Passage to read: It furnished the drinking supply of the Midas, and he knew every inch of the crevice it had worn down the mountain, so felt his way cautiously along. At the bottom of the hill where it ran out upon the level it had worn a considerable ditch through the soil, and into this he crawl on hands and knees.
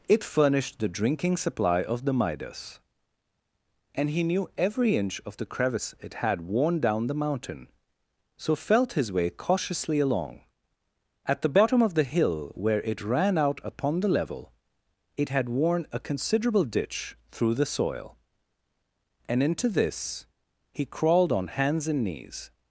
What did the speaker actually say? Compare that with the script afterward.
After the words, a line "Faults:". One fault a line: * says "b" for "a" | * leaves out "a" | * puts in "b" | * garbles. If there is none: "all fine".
It furnished the drinking supply of the Midas, and he knew every inch of the crevice it had worn down the mountain, so felt his way cautiously along. At the bottom of the hill where it ran out upon the level it had worn a considerable ditch through the soil, and into this he crawled on hands and knees.
Faults:
* says "crawled" for "crawl"